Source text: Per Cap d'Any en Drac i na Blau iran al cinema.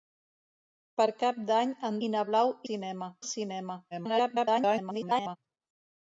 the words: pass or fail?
fail